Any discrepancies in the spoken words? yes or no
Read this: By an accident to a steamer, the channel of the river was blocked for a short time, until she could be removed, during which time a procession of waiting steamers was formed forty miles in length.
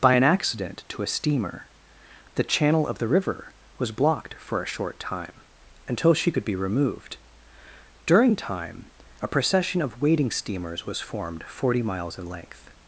yes